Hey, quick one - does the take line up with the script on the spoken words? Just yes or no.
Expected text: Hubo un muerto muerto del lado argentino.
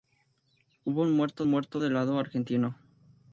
yes